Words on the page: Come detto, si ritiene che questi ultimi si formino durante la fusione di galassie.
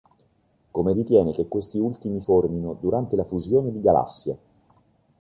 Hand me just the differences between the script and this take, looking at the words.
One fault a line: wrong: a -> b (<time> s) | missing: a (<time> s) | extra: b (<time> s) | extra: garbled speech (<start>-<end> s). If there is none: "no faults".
missing: detto si (0.9 s)
missing: si (2.2 s)